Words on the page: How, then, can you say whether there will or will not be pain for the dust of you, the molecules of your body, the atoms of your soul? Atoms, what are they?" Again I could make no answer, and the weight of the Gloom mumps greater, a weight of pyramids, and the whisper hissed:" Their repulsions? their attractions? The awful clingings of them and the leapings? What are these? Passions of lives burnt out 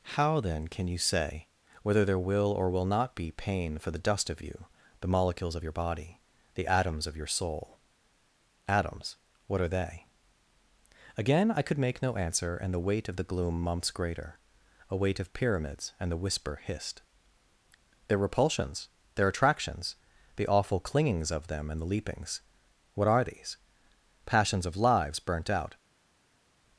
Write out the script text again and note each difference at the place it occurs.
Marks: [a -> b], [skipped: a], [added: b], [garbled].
How, then, can you say whether there will or will not be pain for the dust of you, the molecules of your body, the atoms of your soul? Atoms, what are they?" Again I could make no answer, and the weight of the Gloom mumps greater, a weight of pyramids, and the whisper hissed:" Their repulsions? their attractions? The awful clingings of them and the leapings? What are these? Passions of lives burnt out